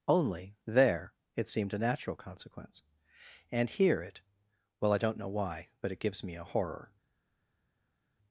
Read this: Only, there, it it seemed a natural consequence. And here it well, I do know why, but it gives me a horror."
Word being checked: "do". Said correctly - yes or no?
no